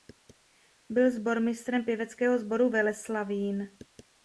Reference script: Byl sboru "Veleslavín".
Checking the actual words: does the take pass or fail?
fail